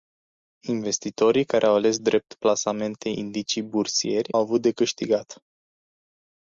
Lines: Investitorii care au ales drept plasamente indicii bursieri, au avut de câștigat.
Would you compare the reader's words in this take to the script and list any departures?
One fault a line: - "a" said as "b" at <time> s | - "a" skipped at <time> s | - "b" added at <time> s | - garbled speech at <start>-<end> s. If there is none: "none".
- "au" skipped at 4.3 s